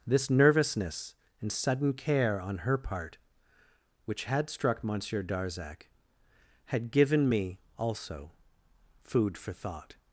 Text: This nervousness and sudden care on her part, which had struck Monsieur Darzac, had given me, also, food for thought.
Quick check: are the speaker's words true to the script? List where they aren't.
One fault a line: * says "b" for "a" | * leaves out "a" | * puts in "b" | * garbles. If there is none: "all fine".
all fine